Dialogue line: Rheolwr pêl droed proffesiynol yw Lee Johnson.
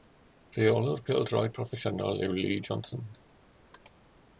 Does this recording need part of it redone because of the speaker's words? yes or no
no